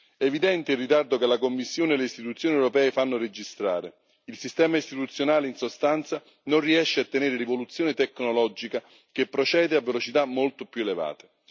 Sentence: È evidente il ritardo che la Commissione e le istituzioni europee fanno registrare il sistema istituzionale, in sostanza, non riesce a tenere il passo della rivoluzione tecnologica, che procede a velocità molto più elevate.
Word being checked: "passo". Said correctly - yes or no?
no